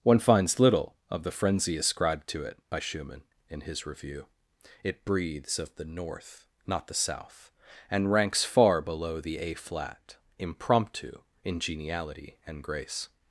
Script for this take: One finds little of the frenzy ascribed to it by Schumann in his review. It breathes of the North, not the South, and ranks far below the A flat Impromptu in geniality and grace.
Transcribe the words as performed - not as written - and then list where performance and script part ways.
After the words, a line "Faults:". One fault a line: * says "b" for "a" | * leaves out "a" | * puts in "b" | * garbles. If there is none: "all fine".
One finds little of the frenzy ascribed to it by Schumann in his review. It breathes of the North, not the South, and ranks far below the A flat Impromptu in geniality and grace.
Faults:
all fine